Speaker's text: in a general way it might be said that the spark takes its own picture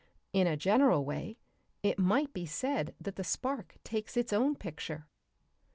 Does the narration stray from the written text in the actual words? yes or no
no